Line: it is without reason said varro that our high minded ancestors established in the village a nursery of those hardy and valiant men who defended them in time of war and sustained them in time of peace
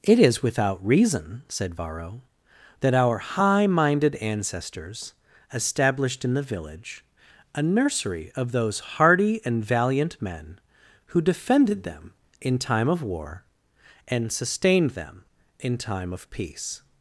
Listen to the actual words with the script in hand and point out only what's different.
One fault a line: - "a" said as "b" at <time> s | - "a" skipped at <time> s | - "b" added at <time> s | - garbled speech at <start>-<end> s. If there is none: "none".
none